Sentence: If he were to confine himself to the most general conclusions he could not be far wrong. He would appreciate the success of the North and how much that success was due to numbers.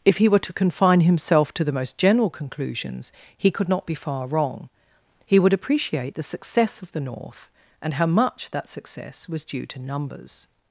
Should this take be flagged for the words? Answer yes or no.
no